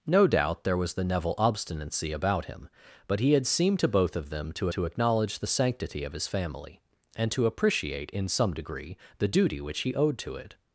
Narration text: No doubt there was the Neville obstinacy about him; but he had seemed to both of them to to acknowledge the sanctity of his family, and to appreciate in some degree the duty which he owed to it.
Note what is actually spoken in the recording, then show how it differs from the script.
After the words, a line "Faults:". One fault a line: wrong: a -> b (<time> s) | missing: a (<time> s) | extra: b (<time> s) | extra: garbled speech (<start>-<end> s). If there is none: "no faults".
No doubt there was the Neville obstinacy about him; but he had seemed to both of them to to acknowledge the sanctity of his family, and to appreciate in some degree the duty which he owed to it.
Faults:
no faults